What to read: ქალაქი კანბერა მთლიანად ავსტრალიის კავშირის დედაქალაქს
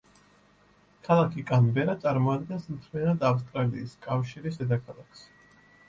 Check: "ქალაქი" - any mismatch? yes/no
no